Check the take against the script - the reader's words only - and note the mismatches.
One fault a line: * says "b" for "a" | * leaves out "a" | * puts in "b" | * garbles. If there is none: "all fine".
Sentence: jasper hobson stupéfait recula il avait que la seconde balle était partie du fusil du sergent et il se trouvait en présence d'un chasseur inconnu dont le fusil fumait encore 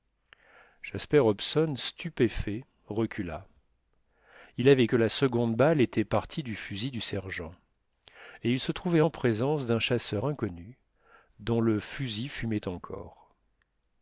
all fine